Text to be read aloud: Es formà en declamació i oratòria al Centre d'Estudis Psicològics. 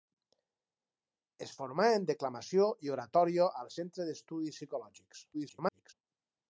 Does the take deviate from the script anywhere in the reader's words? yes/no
yes